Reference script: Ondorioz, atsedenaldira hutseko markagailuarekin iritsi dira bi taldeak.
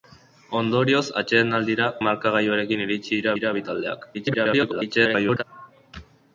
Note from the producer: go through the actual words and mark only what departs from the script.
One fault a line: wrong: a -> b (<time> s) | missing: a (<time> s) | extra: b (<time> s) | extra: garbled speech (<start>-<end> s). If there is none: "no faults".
missing: hutseko (1.9 s)
extra: dira (3.4 s)
extra: garbled speech (4.1-5.4 s)